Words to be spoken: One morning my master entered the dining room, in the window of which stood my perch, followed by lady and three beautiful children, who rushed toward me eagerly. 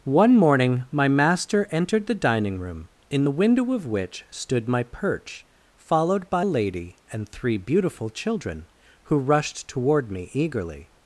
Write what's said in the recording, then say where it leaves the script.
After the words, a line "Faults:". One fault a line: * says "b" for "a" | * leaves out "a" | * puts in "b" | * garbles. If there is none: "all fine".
One morning my master entered the dining room, in the window of which stood my perch, followed by lady and three beautiful children, who rushed toward me eagerly.
Faults:
all fine